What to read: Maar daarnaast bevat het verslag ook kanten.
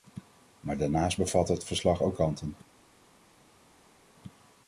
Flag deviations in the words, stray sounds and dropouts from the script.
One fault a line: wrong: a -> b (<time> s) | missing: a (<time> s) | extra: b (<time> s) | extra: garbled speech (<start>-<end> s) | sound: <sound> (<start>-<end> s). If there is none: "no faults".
no faults